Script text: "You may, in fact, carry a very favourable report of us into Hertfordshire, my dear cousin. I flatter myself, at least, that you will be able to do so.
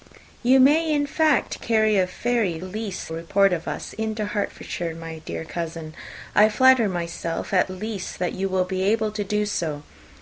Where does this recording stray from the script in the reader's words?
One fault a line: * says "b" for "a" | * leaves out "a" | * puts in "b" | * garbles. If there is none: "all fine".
* says "least" for "favourable"